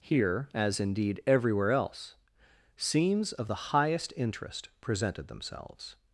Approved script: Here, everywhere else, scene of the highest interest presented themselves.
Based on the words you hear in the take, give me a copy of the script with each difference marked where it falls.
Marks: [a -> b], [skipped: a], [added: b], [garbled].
Here, [added: as indeed] everywhere else, [scene -> scenes] of the highest interest presented themselves.